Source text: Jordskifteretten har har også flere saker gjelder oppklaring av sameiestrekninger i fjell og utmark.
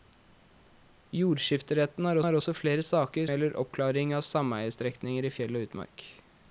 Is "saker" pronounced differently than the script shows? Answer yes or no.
no